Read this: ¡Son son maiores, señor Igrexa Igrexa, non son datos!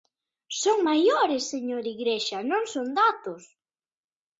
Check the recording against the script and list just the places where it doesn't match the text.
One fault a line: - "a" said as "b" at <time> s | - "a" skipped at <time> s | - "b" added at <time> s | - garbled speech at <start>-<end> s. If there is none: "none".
- "son" skipped at 0.8 s
- "Igrexa" skipped at 2.4 s